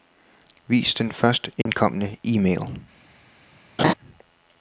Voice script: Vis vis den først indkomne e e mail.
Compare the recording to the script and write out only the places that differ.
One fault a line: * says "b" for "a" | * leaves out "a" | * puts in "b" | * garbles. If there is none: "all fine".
* leaves out "vis"
* leaves out "e"